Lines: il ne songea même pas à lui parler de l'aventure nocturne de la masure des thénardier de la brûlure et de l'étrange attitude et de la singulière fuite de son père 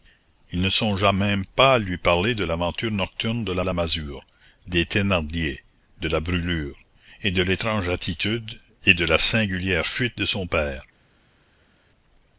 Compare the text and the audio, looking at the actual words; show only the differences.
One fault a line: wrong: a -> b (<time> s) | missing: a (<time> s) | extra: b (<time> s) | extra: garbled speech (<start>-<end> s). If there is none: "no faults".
extra: la (3.6 s)